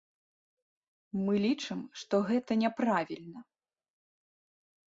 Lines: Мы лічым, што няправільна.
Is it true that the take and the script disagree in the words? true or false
true